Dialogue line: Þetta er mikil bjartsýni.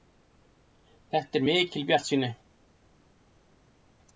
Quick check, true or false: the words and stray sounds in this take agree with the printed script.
true